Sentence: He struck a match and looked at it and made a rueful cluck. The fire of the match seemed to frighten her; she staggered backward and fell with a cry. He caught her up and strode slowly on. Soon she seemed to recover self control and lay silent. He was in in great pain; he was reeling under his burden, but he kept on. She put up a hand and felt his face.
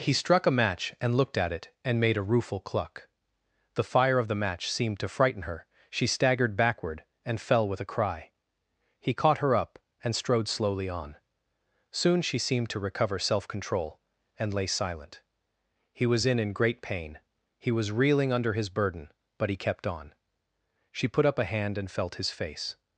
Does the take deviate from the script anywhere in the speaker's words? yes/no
no